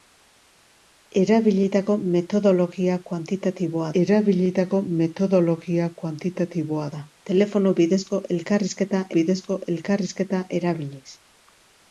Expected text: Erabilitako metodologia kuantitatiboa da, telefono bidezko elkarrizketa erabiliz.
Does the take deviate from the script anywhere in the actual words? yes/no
yes